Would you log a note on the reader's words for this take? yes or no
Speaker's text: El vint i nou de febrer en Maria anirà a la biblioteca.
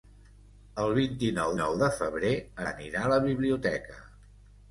yes